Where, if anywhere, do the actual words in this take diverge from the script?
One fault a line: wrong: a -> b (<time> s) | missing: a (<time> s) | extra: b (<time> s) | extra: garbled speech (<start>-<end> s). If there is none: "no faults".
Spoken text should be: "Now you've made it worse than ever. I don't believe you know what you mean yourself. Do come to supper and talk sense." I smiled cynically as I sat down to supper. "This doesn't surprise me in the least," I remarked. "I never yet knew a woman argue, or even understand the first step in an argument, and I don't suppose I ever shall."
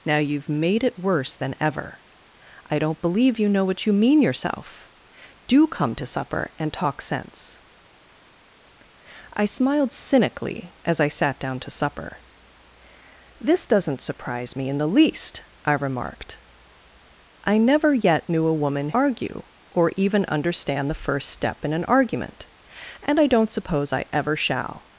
no faults